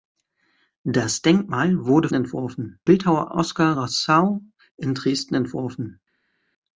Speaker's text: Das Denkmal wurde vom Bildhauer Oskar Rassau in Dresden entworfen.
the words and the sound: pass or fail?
fail